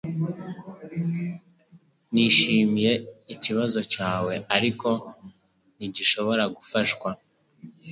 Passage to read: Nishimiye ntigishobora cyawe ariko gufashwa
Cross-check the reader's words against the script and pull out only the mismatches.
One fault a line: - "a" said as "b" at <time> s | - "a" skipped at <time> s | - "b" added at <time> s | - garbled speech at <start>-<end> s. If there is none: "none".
- "ntigishobora" said as "ikibazo" at 3.3 s
- "ntigishobora" added at 5.7 s